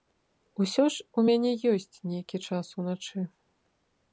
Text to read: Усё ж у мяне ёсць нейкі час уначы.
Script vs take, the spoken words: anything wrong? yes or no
no